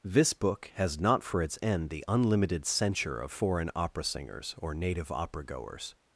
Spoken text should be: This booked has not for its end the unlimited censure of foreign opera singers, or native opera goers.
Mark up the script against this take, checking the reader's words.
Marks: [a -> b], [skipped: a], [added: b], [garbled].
This [booked -> book] has not for its end the unlimited censure of foreign opera singers, or native opera goers.